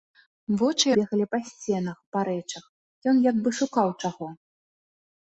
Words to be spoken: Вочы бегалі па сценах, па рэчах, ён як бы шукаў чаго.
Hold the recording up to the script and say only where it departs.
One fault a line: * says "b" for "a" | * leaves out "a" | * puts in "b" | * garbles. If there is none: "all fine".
all fine